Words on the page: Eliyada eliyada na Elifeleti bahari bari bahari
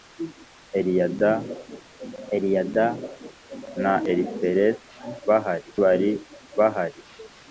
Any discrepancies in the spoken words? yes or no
no